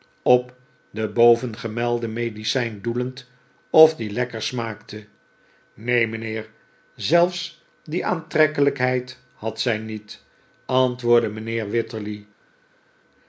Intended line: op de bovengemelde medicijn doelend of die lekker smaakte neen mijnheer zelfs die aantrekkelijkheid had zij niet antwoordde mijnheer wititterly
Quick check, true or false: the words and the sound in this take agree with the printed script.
true